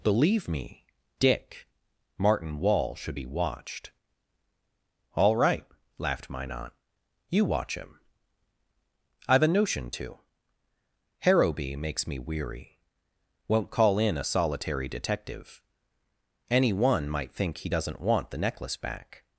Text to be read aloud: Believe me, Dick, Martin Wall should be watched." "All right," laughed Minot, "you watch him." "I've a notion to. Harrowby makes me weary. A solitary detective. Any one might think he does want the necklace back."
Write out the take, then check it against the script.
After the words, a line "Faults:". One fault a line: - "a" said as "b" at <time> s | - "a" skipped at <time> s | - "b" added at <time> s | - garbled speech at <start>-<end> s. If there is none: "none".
Believe me, Dick, Martin Wall should be watched." "All right," laughed Minot, "you watch him." "I've a notion to. Harrowby makes me weary. Won't call in a solitary detective. Any one might think he doesn't want the necklace back."
Faults:
- "Won't call in" added at 13.5 s
- "does" said as "doesn't" at 17.7 s